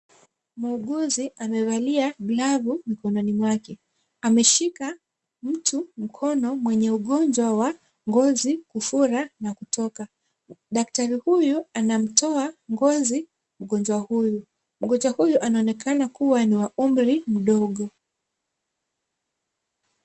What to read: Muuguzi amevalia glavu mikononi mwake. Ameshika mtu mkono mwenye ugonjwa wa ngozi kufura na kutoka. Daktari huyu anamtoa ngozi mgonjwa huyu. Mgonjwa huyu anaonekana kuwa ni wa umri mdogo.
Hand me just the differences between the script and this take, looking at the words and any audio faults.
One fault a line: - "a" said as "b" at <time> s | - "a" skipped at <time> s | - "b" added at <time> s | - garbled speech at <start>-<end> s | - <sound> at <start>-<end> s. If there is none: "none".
none